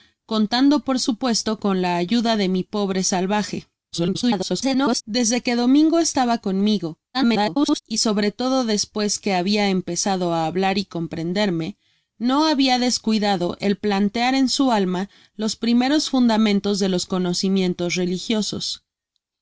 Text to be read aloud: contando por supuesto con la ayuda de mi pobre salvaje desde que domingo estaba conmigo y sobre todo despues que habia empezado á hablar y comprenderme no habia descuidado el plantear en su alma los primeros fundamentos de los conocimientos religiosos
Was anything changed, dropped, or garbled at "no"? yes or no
no